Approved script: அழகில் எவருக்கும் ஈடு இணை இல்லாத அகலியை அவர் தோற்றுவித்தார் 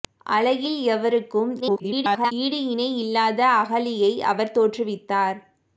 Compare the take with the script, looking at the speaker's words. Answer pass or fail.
fail